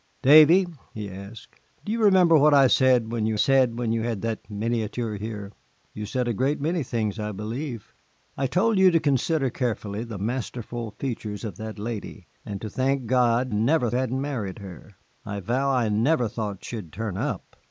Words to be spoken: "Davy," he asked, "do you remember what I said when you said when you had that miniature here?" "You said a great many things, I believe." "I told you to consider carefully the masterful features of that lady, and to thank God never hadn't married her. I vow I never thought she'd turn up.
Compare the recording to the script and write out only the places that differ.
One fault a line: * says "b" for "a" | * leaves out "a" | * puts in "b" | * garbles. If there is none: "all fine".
all fine